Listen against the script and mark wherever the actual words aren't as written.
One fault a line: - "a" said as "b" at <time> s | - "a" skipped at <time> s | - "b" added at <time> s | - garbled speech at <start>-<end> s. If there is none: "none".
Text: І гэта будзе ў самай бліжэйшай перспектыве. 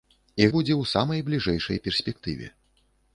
- "гэта" skipped at 0.5 s